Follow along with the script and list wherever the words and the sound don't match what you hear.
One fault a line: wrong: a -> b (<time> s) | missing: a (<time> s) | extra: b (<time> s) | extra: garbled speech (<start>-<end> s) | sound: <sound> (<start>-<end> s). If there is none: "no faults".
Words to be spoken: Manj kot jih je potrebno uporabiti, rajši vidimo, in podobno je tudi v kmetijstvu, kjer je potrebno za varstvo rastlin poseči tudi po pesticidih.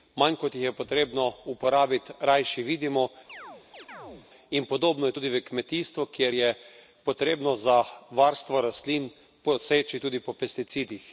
sound: chirp (3.3-4.3 s)